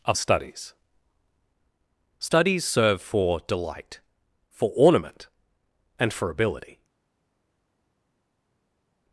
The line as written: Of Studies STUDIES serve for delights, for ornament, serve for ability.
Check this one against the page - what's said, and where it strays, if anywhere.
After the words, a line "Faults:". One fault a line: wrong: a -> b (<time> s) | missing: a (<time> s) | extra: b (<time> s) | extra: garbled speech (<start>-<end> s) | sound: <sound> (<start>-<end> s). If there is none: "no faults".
Of Studies STUDIES serve for delight, for ornament, and for ability.
Faults:
wrong: delights -> delight (3.5 s)
wrong: serve -> and (6.0 s)